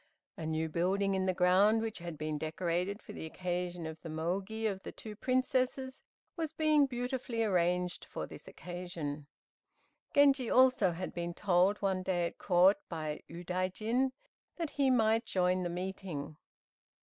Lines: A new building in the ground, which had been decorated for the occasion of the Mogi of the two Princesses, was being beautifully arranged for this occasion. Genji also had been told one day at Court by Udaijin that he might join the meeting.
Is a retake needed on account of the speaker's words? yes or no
no